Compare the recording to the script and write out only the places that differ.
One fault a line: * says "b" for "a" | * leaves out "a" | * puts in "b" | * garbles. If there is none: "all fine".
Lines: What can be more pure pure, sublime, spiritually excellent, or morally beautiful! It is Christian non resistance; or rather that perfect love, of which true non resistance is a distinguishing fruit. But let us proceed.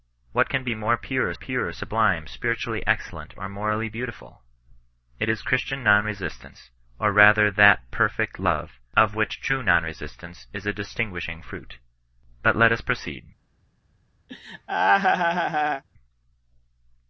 all fine